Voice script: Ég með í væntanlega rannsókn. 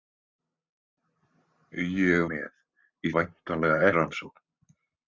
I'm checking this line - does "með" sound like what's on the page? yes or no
yes